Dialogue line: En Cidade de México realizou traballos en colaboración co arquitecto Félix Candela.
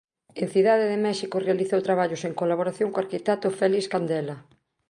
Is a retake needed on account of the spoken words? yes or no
no